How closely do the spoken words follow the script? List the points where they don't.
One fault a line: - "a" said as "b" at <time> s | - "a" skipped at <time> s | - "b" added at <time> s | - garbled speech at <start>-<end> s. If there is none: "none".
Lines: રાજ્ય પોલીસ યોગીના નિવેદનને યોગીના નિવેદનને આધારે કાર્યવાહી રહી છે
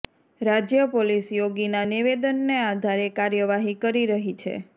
- "યોગીના નિવેદનને" skipped at 2.6 s
- "કરી" added at 3.8 s